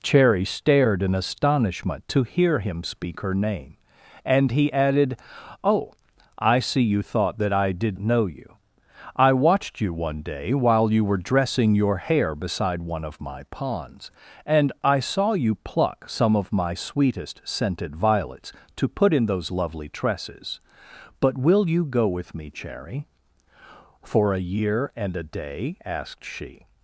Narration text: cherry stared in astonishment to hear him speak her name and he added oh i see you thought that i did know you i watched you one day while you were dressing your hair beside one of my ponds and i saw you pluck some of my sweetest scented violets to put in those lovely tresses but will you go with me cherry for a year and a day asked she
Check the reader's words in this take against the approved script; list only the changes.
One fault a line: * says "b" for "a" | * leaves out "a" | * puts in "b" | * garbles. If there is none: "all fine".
all fine